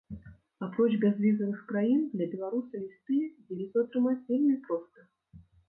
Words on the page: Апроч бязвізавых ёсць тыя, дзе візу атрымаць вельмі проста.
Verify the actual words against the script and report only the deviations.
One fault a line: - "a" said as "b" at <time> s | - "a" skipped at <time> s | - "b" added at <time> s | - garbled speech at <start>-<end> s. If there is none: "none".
- "краін для беларуса" added at 1.7 s